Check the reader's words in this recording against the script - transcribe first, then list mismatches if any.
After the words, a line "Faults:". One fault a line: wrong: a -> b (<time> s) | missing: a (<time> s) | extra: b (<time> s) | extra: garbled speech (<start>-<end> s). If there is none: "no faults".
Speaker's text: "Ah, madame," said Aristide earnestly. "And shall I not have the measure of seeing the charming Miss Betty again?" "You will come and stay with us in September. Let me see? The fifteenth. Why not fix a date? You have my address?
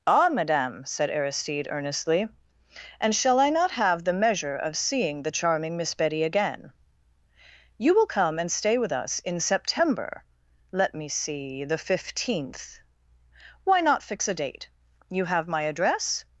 "Ah, madame," said Aristide earnestly. "And shall I not have the measure of seeing the charming Miss Betty again?" "You will come and stay with us in September. Let me see? The fifteenth. Why not fix a date? You have my address?
Faults:
no faults